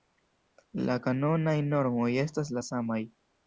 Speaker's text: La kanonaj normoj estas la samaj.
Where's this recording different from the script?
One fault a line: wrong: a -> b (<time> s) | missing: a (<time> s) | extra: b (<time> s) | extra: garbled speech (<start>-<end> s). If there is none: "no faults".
no faults